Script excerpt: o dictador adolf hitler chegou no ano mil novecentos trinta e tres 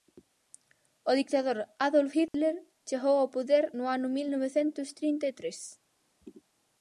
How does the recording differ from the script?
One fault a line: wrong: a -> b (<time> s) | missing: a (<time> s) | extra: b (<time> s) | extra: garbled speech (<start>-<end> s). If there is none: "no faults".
extra: ao poder (3.2 s)